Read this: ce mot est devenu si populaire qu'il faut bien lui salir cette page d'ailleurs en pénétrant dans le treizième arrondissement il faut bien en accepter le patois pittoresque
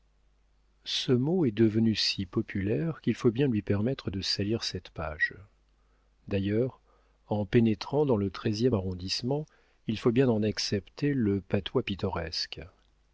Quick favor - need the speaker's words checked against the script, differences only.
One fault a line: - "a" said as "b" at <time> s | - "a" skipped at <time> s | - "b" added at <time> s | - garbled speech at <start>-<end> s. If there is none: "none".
- "permettre de" added at 3.6 s